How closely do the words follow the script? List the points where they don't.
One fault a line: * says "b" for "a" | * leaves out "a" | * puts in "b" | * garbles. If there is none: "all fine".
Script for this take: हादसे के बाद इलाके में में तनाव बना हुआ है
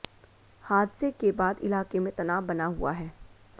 * leaves out "में"